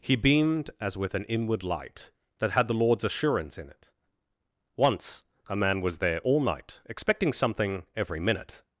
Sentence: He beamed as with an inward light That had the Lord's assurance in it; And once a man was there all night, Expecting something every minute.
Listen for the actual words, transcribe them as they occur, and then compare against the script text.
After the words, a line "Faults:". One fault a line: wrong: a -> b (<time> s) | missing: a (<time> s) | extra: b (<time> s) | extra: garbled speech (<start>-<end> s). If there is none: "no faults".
He beamed as with an inward light That had the Lord's assurance in it; once a man was there all night, Expecting something every minute.
Faults:
missing: And (3.9 s)